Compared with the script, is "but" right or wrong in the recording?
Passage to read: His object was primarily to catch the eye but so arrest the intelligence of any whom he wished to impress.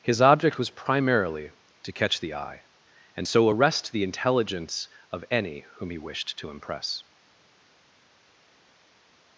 wrong